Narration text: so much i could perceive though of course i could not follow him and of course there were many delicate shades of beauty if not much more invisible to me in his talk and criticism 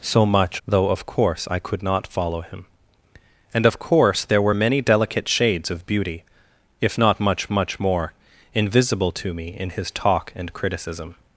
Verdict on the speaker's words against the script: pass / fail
fail